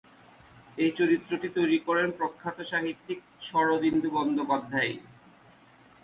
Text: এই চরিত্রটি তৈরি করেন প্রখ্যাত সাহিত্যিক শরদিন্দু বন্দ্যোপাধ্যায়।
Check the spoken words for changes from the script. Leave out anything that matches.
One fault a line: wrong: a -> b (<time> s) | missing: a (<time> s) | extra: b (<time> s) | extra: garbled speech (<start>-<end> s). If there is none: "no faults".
no faults